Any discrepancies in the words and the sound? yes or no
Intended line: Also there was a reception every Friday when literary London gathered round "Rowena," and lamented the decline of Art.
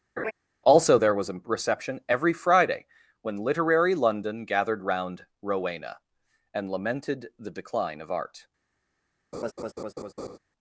yes